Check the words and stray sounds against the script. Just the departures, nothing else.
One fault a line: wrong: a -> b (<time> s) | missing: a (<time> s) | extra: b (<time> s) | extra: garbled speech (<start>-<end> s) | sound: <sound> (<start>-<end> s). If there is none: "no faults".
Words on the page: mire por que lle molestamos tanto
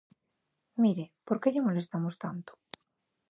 no faults